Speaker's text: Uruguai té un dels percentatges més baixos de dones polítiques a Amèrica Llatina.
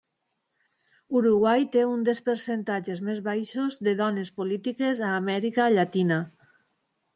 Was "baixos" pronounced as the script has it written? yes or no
yes